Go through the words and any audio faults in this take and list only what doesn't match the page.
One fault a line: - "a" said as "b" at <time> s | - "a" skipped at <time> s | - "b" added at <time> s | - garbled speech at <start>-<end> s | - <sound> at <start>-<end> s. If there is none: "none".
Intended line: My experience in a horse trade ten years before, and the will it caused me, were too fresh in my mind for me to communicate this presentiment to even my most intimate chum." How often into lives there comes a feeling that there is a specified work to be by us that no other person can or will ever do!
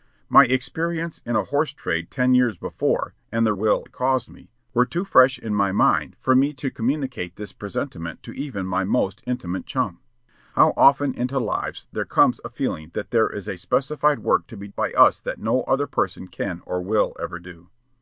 none